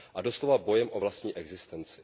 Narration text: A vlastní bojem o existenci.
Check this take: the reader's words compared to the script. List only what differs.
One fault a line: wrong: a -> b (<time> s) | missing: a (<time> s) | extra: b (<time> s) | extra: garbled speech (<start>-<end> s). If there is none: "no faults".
wrong: vlastní -> doslova (0.2 s)
extra: vlastní (1.0 s)